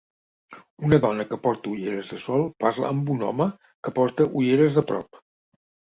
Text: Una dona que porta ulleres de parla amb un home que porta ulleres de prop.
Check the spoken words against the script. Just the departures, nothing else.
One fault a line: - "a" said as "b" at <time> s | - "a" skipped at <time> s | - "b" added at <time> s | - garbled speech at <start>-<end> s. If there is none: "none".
- "sol" added at 2.2 s